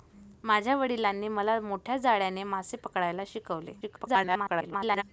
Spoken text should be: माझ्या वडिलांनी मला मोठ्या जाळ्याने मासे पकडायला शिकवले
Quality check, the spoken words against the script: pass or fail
fail